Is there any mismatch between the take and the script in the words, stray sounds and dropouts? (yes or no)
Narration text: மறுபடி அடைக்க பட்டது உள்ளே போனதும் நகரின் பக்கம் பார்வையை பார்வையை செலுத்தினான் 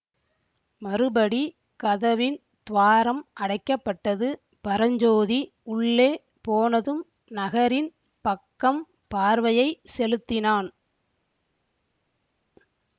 yes